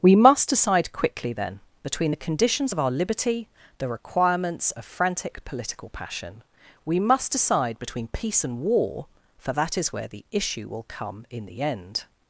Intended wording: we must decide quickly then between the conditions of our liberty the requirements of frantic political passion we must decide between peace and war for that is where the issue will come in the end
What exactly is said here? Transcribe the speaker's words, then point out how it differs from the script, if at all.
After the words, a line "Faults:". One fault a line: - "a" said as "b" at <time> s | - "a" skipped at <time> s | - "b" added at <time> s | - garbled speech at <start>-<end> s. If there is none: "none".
we must decide quickly then between the conditions of our liberty the requirements of frantic political passion we must decide between peace and war for that is where the issue will come in the end
Faults:
none